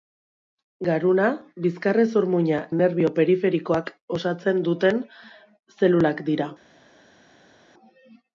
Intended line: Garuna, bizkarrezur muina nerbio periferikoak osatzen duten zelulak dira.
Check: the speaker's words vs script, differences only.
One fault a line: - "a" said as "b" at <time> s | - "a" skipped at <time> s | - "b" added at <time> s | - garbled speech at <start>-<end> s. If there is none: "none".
none